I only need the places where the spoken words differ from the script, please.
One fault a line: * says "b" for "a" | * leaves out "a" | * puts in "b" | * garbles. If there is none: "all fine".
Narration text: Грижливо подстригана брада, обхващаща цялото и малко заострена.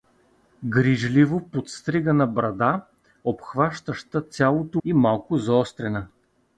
all fine